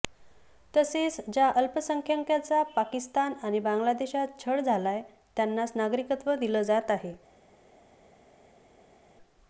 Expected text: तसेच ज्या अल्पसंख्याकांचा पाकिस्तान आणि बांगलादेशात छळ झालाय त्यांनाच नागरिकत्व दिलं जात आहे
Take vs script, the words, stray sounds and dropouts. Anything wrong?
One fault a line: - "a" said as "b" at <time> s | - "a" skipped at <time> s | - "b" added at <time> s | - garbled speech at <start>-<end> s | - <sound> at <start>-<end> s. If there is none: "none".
none